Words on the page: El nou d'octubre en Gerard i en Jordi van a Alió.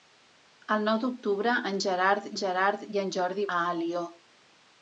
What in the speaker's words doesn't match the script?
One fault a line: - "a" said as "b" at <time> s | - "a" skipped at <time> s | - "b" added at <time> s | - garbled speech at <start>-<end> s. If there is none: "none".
- "Gerard" added at 2.4 s
- "van" skipped at 3.5 s